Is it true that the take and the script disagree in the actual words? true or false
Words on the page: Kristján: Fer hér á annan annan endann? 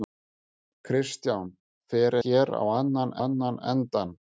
false